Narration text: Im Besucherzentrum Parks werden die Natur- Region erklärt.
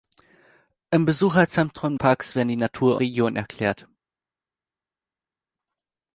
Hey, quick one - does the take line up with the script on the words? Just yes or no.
yes